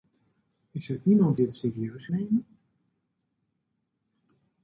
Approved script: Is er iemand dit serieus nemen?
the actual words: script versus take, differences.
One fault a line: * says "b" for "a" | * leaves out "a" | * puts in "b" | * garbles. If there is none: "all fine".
all fine